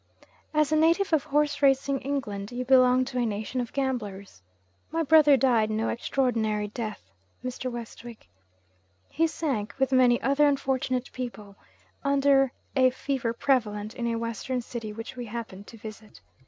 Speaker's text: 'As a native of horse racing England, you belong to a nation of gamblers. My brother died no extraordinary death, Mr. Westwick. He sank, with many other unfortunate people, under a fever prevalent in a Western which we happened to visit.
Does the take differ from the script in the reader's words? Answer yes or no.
yes